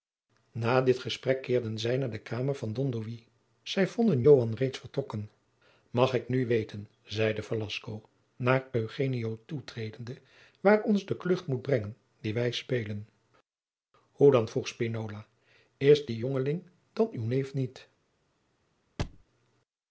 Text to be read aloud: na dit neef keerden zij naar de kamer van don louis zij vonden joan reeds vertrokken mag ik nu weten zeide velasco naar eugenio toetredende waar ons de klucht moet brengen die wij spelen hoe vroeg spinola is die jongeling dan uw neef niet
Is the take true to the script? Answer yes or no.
no